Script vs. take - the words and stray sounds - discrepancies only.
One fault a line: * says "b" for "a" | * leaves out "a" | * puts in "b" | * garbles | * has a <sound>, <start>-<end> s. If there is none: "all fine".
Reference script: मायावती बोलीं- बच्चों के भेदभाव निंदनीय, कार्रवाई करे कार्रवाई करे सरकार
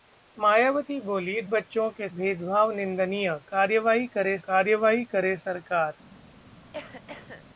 * has a cough, 6.7-7.4 s